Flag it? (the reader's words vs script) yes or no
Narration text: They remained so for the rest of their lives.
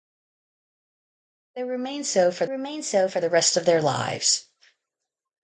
yes